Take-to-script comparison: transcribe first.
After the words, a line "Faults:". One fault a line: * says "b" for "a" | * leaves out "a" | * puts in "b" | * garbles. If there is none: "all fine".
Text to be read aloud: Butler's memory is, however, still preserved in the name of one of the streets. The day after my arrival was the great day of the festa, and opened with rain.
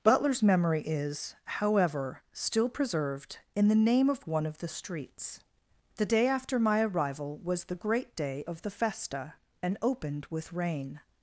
Butler's memory is, however, still preserved in the name of one of the streets. The day after my arrival was the great day of the festa, and opened with rain.
Faults:
all fine